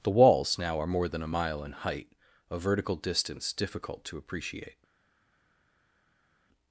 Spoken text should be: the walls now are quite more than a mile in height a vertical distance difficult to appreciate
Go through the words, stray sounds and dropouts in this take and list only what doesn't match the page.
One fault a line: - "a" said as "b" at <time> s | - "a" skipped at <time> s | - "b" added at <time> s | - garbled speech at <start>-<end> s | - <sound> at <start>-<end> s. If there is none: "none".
- "quite" skipped at 0.9 s